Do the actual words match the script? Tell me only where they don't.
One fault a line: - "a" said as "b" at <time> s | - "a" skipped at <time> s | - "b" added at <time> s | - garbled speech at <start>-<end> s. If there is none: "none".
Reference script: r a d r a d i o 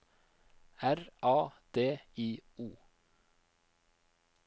- "r a d" skipped at 2.0 s